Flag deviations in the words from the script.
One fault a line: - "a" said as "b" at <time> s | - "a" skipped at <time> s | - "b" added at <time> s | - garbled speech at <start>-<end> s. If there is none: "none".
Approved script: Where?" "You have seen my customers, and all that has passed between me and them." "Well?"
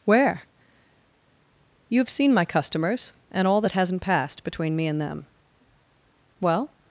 - "has" said as "hasn't" at 3.7 s